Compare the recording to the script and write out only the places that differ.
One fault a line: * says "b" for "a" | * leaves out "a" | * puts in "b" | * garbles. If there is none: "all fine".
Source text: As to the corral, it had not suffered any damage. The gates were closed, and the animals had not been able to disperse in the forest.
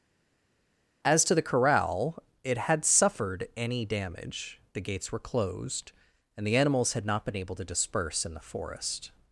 * leaves out "not"